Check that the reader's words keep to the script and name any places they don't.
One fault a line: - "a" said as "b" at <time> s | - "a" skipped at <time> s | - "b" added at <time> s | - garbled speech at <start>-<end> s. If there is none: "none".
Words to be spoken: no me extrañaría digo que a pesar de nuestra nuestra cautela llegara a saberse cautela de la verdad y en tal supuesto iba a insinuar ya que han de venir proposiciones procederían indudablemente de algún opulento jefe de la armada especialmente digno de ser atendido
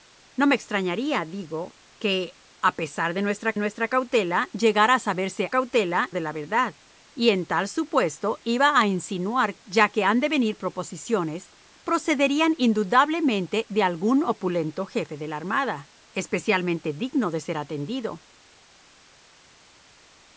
none